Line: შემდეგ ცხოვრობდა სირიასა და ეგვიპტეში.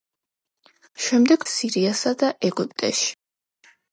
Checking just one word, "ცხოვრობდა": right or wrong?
wrong